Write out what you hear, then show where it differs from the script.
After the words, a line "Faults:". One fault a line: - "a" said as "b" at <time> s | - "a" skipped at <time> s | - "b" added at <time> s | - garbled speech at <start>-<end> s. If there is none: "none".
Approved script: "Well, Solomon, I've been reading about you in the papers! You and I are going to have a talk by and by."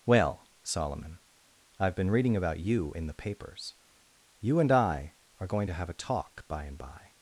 "Well, Solomon, I've been reading about you in the papers! You and I are going to have a talk by and by."
Faults:
none